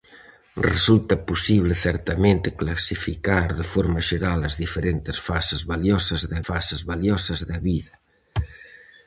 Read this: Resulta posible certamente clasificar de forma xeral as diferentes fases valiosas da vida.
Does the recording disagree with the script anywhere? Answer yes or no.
yes